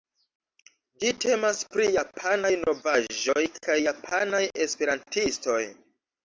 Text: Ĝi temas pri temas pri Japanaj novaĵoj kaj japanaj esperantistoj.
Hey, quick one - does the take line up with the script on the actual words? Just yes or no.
no